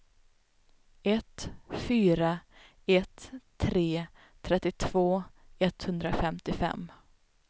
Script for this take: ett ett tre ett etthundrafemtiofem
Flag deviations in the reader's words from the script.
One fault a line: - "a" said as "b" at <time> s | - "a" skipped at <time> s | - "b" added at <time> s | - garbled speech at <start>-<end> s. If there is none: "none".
- "fyra" added at 1.7 s
- "ett" said as "trettiotvå" at 4.4 s